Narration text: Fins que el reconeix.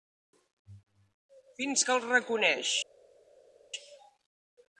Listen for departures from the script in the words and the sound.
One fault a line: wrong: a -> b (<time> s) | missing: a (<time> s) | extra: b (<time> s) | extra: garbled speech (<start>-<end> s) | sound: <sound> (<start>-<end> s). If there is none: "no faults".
no faults